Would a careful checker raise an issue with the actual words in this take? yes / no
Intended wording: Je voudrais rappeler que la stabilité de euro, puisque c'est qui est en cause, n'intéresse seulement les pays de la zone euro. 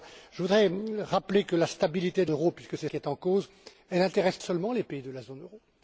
no